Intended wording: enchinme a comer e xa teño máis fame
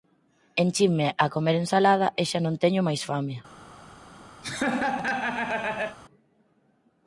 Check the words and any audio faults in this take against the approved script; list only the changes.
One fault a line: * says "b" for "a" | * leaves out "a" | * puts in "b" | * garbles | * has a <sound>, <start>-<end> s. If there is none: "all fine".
* puts in "ensalada"
* puts in "non"
* has a laugh, 4.4-6.0 s